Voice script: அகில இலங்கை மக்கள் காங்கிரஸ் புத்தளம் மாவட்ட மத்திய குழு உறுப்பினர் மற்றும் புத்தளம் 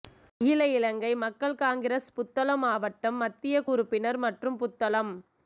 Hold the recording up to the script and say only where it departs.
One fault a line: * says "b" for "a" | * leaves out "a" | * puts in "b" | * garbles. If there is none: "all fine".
* leaves out "குழு"